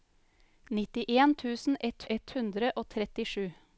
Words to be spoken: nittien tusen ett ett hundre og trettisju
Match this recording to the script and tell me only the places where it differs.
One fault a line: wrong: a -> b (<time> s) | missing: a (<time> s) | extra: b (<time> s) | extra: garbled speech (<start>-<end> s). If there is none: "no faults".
no faults